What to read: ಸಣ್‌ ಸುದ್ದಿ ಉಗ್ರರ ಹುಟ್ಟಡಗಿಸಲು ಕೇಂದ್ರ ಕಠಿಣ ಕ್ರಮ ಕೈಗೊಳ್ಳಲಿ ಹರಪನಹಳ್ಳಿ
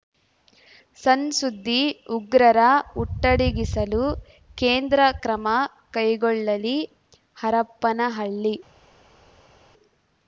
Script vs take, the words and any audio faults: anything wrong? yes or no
yes